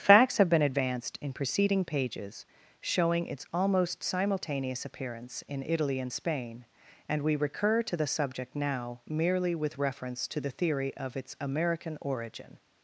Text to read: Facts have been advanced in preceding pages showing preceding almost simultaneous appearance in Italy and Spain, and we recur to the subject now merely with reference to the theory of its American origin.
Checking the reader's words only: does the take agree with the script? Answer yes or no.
no